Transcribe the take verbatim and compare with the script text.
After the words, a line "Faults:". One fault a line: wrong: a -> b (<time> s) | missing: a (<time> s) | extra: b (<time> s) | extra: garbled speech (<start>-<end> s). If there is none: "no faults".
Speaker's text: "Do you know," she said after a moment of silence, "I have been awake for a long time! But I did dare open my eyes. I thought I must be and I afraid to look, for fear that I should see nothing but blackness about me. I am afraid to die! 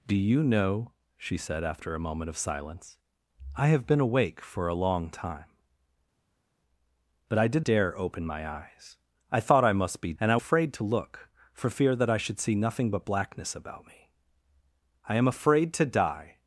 "Do you know," she said after a moment of silence, "I have been awake for a long time! But I did dare open my eyes. I thought I must be and I afraid to look, for fear that I should see nothing but blackness about me. I am afraid to die!
Faults:
no faults